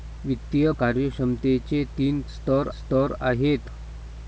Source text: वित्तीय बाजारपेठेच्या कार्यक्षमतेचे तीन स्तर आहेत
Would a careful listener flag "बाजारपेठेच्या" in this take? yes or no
yes